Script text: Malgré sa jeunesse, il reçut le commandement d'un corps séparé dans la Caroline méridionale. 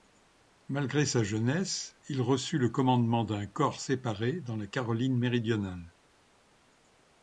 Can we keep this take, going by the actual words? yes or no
yes